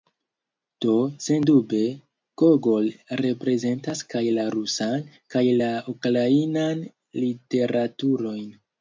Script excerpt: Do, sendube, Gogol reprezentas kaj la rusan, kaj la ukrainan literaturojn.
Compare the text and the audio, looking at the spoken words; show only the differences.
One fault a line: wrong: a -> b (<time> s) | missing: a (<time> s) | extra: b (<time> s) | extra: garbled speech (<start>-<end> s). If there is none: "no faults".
no faults